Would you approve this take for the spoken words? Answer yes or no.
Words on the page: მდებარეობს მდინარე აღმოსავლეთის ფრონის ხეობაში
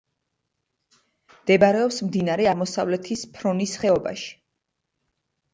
yes